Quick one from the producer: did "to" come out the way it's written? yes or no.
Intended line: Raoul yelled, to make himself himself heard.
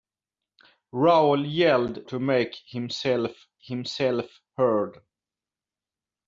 yes